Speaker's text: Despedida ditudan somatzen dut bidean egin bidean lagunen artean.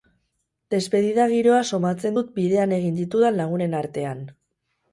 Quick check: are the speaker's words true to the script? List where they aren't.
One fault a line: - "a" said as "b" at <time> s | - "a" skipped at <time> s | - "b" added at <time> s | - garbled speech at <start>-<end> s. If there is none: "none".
- "ditudan" said as "giroa" at 1.3 s
- "bidean" said as "ditudan" at 3.0 s